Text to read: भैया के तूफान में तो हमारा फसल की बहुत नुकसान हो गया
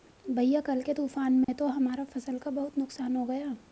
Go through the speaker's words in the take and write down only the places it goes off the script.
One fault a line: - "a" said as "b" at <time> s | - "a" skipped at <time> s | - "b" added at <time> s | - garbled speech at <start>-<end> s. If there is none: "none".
- "कल" added at 0.6 s
- "की" said as "का" at 2.4 s